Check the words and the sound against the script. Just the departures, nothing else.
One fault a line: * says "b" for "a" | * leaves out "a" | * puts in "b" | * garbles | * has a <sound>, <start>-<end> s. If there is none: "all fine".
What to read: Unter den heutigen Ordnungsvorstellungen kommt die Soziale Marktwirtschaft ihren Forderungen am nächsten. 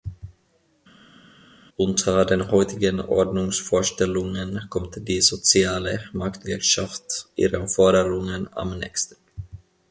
all fine